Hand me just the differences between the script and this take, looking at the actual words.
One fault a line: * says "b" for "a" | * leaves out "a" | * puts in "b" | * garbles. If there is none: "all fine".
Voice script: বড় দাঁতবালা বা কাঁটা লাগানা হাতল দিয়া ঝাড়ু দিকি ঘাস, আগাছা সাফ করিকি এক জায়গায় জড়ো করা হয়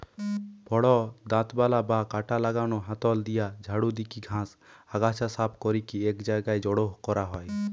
all fine